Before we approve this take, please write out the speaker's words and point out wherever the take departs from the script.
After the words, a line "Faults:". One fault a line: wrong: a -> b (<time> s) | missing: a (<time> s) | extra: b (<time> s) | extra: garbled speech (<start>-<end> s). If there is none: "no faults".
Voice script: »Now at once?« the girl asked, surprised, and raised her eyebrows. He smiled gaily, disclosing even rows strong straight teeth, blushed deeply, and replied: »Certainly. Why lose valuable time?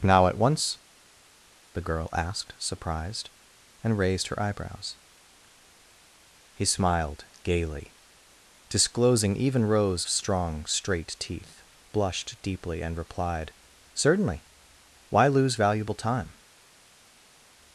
»Now at once?« the girl asked, surprised, and raised her eyebrows. He smiled gaily, disclosing even rows strong straight teeth, blushed deeply, and replied: »Certainly. Why lose valuable time?
Faults:
no faults